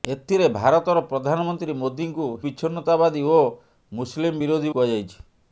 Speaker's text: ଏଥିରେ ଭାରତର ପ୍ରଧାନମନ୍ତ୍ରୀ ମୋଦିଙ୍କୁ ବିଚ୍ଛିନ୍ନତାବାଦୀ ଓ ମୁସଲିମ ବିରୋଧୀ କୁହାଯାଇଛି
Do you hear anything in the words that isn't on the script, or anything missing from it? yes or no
no